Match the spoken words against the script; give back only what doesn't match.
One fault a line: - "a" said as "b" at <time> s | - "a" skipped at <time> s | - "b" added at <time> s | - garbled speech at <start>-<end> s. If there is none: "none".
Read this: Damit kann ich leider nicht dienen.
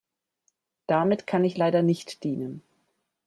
none